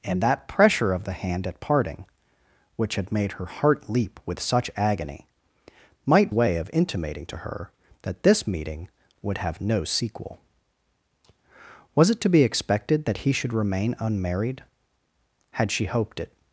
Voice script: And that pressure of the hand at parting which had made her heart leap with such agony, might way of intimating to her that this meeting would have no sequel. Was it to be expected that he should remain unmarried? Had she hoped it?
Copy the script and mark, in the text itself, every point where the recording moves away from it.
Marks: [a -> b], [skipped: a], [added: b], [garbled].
And that pressure of the hand at parting which had made her heart leap with such agony, might way of intimating to her that this meeting would have no sequel. Was it to be expected that he should remain unmarried? Had she hoped it?